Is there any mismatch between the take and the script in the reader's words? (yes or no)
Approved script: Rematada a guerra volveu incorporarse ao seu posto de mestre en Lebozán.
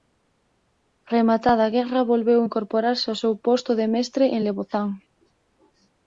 no